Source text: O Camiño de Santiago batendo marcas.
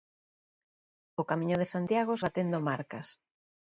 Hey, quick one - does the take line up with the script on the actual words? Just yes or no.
yes